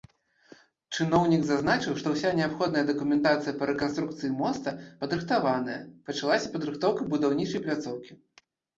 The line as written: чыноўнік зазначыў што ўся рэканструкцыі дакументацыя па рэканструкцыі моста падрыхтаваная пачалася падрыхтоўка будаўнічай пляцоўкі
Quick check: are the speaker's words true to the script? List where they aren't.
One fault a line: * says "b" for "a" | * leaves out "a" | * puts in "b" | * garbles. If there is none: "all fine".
* says "неабходная" for "рэканструкцыі"